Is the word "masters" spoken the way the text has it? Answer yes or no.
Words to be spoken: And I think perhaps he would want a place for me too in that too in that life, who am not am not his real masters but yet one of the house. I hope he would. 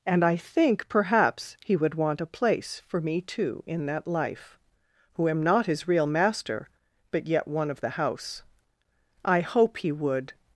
no